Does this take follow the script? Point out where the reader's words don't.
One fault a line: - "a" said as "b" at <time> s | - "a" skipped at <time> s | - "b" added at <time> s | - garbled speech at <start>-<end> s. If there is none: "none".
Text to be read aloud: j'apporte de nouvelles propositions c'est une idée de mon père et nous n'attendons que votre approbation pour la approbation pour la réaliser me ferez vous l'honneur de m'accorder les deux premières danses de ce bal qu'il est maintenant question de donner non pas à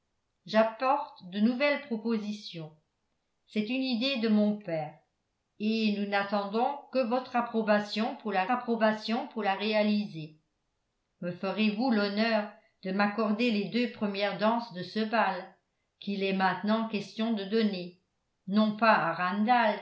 none